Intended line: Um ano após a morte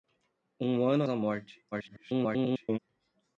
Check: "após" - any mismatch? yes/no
yes